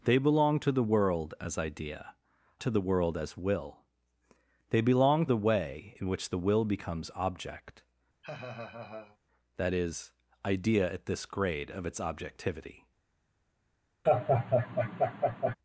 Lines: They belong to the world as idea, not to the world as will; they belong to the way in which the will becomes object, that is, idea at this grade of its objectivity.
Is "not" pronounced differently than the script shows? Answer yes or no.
yes